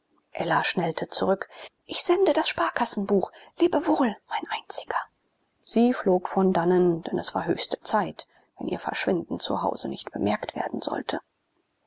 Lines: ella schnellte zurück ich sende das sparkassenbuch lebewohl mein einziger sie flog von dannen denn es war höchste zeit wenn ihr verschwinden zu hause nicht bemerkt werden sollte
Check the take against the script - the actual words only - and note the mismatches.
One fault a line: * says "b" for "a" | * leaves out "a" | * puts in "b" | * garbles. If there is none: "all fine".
all fine